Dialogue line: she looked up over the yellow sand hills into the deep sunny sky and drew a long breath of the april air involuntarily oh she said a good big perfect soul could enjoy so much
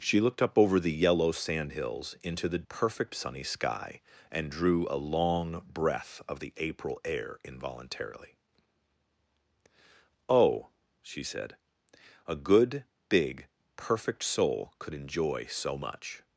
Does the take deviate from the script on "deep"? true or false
true